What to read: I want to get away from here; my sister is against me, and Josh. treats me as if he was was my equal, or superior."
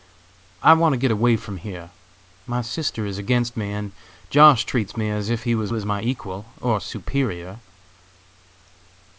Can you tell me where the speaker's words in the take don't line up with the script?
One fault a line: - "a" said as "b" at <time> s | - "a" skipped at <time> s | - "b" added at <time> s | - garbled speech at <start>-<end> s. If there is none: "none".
none